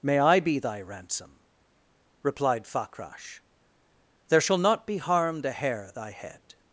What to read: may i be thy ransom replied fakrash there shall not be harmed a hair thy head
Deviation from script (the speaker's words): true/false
false